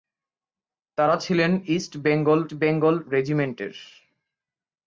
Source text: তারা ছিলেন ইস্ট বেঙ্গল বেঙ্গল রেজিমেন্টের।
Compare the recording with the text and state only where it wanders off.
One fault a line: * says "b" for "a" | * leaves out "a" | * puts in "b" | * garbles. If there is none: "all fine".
all fine